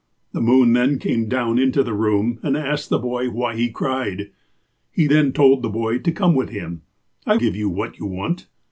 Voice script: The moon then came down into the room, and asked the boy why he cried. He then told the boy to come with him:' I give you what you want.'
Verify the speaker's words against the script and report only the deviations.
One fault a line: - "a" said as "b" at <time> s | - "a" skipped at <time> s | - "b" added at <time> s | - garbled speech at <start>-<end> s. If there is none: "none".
none